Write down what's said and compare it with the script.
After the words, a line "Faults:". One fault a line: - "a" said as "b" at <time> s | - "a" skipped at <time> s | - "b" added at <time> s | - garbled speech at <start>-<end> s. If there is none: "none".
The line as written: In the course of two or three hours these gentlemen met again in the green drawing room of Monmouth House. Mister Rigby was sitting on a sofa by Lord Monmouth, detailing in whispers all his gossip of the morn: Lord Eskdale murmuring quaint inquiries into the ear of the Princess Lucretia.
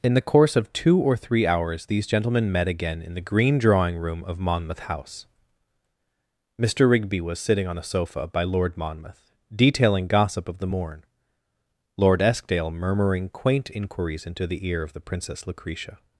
In the course of two or three hours these gentlemen met again in the green drawing room of Monmouth House. Mister Rigby was sitting on a sofa by Lord Monmouth, detailing gossip of the morn: Lord Eskdale murmuring quaint inquiries into the ear of the Princess Lucretia.
Faults:
- "in whispers all his" skipped at 10.1 s